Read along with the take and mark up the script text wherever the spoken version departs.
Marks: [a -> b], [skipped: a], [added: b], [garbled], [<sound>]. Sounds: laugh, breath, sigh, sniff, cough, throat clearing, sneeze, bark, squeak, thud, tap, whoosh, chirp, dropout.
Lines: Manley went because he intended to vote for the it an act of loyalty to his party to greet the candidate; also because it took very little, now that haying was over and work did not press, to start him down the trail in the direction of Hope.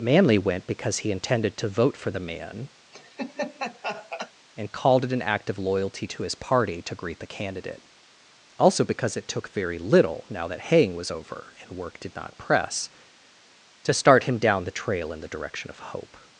Manley went because he intended to vote for the [added: man and called] [laugh] it an act of loyalty to his party to greet the candidate; also because it took very little, now that haying was over and work did not press, to start him down the trail in the direction of Hope.